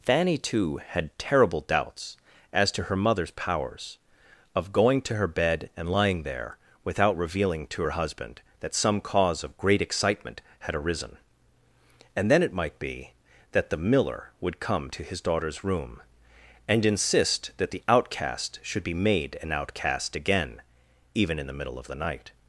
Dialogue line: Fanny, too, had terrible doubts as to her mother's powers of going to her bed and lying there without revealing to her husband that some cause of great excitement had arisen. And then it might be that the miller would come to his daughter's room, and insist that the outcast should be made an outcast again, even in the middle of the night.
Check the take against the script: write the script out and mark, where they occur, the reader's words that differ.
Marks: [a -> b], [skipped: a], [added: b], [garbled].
Fanny, too, had terrible doubts as to her mother's powers of going to her bed and lying there without revealing to her husband that some cause of great excitement had arisen. And then it might be that the miller would come to his daughter's room, and insist that the outcast should be made an outcast again, even in the middle of the night.